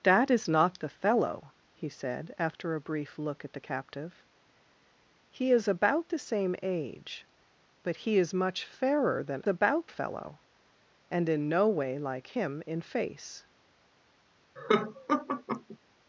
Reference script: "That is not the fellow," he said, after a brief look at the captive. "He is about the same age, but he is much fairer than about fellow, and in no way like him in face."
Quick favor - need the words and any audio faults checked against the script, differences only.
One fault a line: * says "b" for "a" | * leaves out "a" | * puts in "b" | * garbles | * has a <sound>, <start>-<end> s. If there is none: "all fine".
* has a laugh, 14.6-15.8 s